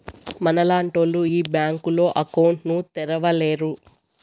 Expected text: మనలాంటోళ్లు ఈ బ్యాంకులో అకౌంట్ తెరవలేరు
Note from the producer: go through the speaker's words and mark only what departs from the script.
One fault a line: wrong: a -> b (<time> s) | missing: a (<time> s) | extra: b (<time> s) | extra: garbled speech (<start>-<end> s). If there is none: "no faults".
extra: ను (2.7 s)